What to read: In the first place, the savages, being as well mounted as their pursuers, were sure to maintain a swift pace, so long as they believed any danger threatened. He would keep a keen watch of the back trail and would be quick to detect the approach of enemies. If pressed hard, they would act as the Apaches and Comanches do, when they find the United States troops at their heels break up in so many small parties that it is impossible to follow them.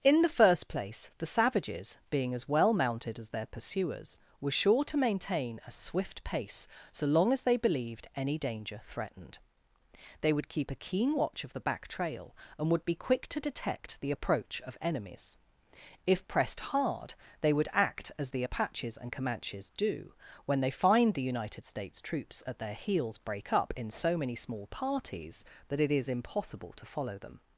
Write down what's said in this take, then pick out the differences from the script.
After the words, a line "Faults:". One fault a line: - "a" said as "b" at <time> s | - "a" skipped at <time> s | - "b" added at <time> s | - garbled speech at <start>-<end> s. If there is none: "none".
In the first place, the savages, being as well mounted as their pursuers, were sure to maintain a swift pace, so long as they believed any danger threatened. They would keep a keen watch of the back trail and would be quick to detect the approach of enemies. If pressed hard, they would act as the Apaches and Comanches do, when they find the United States troops at their heels break up in so many small parties that it is impossible to follow them.
Faults:
- "He" said as "They" at 10.2 s